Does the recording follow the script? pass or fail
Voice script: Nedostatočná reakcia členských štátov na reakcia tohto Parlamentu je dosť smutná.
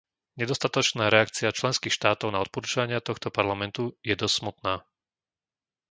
fail